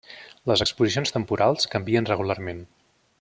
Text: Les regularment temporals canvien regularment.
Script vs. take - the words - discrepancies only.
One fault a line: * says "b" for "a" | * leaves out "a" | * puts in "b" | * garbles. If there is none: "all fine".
* says "exposicions" for "regularment"